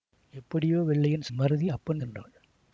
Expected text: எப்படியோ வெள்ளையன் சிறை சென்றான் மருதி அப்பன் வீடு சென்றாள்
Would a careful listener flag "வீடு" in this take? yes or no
yes